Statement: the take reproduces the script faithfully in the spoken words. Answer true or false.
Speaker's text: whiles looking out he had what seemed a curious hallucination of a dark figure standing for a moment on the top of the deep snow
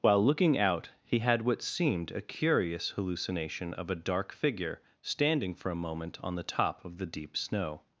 false